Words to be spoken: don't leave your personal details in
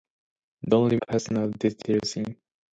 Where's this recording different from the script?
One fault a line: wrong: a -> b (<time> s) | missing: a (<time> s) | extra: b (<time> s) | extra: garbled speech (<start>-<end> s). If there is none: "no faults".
missing: your (1.0 s)